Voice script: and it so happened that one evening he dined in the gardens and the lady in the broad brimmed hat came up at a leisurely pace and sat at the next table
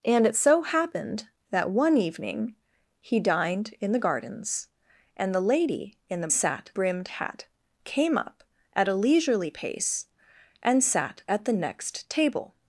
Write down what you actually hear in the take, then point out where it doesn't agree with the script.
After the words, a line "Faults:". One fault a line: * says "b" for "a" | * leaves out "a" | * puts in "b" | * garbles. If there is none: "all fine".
and it so happened that one evening he dined in the gardens and the lady in the sat brimmed hat came up at a leisurely pace and sat at the next table
Faults:
* says "sat" for "broad"